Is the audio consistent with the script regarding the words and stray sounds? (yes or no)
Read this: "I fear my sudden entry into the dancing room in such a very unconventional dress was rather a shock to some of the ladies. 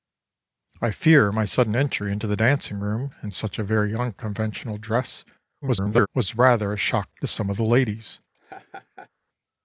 no